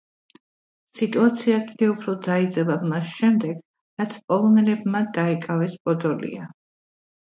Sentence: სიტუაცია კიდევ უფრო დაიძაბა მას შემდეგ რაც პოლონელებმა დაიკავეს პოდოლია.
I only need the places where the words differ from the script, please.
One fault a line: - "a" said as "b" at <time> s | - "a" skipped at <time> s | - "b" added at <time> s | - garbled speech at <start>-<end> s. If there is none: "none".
none